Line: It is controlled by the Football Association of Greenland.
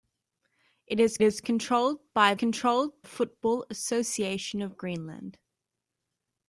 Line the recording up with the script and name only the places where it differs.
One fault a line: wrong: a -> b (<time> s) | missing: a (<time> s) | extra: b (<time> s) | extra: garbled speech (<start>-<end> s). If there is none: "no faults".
extra: is (1.2 s)
wrong: the -> controlled (2.3 s)